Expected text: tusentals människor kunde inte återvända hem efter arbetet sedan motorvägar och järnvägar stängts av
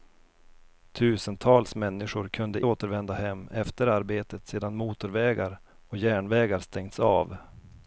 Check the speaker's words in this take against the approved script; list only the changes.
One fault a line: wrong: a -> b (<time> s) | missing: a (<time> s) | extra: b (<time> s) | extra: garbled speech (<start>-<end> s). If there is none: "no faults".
missing: inte (2.6 s)